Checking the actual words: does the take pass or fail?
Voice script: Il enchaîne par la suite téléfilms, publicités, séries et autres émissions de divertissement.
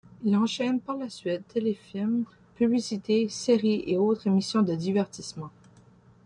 pass